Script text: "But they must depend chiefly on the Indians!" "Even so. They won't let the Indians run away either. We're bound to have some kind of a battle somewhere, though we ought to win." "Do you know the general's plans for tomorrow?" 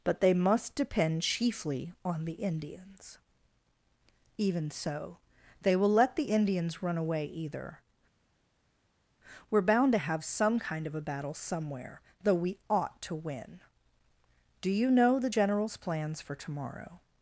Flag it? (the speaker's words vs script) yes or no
yes